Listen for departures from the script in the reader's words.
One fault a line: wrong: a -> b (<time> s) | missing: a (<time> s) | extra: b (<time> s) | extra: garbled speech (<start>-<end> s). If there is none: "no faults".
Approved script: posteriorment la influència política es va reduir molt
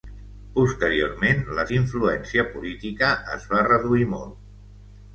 no faults